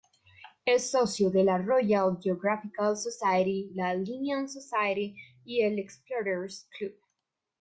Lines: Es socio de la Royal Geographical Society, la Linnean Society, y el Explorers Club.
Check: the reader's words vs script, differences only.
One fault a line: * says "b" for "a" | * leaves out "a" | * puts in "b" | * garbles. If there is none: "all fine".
all fine